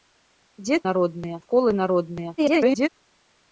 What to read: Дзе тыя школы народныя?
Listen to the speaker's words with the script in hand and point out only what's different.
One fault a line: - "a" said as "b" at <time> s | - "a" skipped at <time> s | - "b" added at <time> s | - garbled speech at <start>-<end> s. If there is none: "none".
- "тыя" said as "народныя" at 0.9 s
- garbled speech at 2.4-2.9 s